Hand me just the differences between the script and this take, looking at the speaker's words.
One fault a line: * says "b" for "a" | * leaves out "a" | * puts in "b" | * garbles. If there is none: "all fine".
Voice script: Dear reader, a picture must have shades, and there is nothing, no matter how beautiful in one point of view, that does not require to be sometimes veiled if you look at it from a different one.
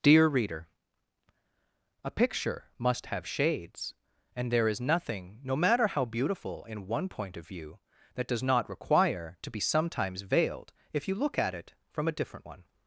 all fine